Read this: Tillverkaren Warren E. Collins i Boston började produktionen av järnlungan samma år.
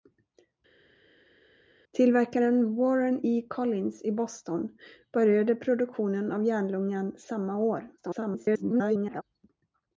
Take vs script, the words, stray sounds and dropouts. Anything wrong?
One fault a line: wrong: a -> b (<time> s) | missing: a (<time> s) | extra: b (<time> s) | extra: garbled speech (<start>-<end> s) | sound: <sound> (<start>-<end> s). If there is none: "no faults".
extra: garbled speech (8.0-9.2 s)